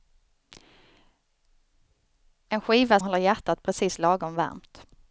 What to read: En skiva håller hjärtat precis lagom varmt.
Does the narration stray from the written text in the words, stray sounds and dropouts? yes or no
no